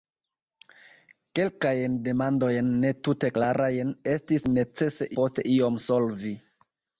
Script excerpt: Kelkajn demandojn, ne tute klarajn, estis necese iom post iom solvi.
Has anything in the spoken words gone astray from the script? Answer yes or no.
yes